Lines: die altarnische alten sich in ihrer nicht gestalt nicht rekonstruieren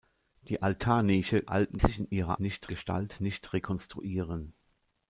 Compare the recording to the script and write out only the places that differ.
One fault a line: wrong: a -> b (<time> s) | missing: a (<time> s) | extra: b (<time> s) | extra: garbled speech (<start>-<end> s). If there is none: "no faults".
no faults